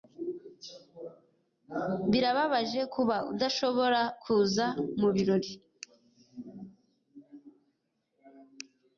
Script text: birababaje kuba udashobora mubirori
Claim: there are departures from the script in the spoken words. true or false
true